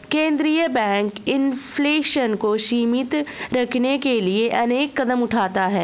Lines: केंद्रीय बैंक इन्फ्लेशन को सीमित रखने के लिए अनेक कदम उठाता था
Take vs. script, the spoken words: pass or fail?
fail